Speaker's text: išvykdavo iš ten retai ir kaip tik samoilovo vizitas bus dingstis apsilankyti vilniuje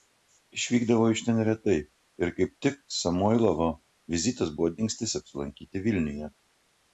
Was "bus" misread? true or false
true